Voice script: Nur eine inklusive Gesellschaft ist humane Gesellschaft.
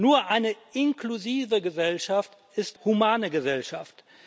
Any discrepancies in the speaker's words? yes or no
no